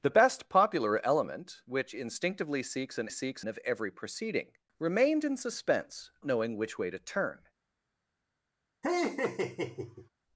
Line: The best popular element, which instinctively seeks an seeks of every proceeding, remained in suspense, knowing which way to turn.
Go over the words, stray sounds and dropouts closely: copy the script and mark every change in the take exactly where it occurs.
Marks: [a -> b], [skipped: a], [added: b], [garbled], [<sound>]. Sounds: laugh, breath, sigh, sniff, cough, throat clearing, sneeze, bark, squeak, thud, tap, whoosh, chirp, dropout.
The best popular element, which instinctively seeks an seeks of every proceeding, remained in suspense, knowing which way to turn. [laugh]